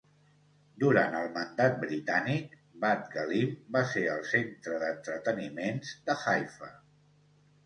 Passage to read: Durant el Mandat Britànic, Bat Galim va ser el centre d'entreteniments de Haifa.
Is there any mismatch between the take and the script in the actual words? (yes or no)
no